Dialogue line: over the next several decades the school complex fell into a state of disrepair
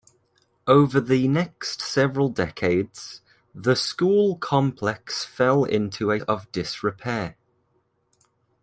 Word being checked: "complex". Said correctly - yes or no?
yes